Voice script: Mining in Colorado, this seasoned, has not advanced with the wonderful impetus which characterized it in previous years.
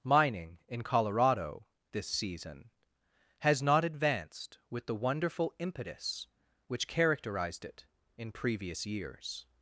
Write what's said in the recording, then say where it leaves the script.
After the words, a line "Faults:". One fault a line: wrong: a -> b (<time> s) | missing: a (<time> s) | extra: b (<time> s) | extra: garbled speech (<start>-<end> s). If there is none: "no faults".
Mining in Colorado, this season, has not advanced with the wonderful impetus which characterized it in previous years.
Faults:
wrong: seasoned -> season (2.1 s)